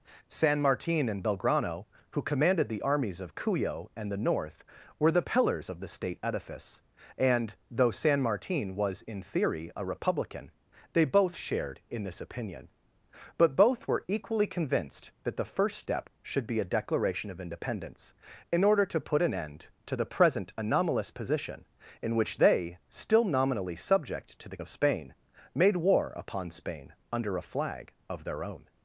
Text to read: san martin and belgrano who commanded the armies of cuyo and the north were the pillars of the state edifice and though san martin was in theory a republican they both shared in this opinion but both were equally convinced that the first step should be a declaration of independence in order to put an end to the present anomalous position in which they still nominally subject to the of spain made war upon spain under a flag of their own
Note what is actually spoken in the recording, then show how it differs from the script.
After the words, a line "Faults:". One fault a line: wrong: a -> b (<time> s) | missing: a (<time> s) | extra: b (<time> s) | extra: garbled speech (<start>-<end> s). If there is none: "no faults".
san martin and belgrano who commanded the armies of cuyo and the north were the pillars of the state edifice and though san martin was in theory a republican they both shared in this opinion but both were equally convinced that the first step should be a declaration of independence in order to put an end to the present anomalous position in which they still nominally subject to the of spain made war upon spain under a flag of their own
Faults:
no faults